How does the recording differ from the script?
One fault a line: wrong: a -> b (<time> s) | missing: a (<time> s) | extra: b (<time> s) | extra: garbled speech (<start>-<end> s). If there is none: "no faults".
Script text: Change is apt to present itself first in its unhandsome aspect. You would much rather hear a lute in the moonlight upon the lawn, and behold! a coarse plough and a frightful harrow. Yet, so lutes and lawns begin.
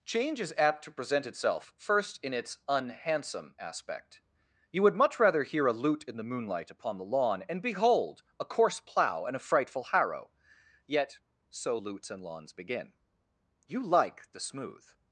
extra: You like the smooth (13.7 s)